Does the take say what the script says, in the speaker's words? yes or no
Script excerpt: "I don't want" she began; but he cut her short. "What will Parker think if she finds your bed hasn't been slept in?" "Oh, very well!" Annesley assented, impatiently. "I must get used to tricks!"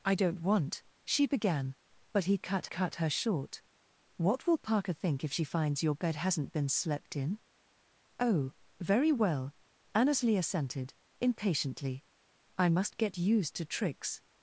no